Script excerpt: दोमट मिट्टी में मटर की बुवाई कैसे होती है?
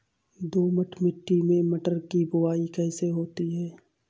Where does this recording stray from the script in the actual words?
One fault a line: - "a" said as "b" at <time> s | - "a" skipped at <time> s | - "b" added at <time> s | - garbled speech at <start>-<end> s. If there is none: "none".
none